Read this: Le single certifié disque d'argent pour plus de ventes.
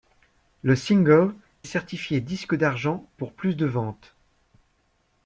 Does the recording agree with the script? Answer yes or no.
yes